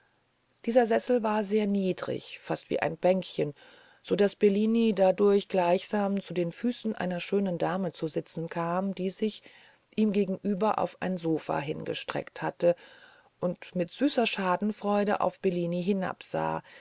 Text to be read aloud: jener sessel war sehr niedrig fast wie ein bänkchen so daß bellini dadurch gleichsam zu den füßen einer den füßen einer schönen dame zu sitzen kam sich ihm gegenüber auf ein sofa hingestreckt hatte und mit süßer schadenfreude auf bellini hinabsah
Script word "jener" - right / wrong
wrong